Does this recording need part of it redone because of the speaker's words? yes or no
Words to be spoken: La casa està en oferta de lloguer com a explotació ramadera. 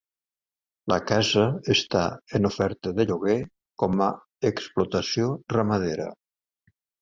no